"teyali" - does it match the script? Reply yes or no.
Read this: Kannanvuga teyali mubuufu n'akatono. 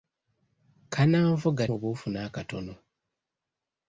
no